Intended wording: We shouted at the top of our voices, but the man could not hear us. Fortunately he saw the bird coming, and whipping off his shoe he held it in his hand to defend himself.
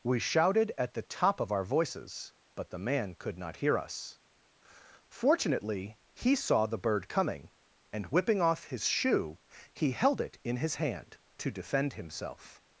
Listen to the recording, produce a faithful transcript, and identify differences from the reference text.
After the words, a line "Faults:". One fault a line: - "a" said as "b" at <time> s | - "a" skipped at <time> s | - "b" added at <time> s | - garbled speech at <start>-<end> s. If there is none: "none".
We shouted at the top of our voices, but the man could not hear us. Fortunately he saw the bird coming, and whipping off his shoe he held it in his hand to defend himself.
Faults:
none